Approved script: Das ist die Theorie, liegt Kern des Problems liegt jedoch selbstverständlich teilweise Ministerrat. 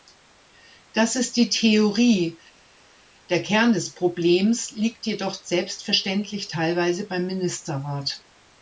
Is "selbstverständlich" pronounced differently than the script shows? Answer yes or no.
no